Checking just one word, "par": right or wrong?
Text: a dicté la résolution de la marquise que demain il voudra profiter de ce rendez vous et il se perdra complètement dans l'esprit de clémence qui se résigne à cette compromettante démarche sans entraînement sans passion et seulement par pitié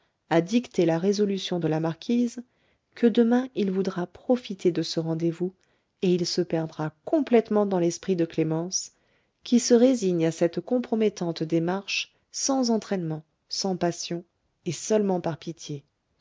right